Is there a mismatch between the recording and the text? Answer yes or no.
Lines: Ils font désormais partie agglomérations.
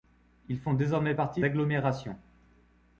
no